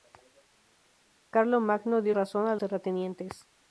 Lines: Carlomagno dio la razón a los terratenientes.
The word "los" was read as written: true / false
false